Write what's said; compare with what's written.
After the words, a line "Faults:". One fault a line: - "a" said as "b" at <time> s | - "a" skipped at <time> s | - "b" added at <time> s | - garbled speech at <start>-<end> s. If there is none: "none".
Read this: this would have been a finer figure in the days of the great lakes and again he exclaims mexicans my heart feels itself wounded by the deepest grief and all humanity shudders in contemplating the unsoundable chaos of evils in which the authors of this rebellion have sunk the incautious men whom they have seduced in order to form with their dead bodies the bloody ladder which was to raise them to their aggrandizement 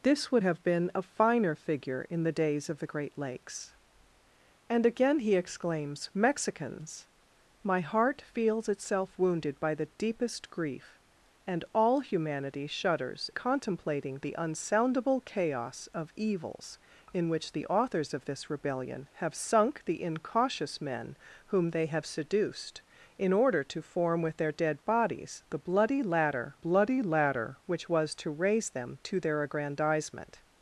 this would have been a finer figure in the days of the great lakes and again he exclaims mexicans my heart feels itself wounded by the deepest grief and all humanity shudders contemplating the unsoundable chaos of evils in which the authors of this rebellion have sunk the incautious men whom they have seduced in order to form with their dead bodies the bloody ladder bloody ladder which was to raise them to their aggrandizement
Faults:
- "in" skipped at 13.3 s
- "bloody ladder" added at 26.5 s